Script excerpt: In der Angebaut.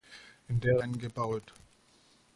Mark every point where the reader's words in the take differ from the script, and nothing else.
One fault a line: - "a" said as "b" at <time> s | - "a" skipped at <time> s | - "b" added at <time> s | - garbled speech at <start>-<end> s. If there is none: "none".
none